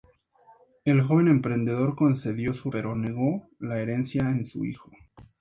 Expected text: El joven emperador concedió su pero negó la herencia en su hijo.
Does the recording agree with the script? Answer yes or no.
yes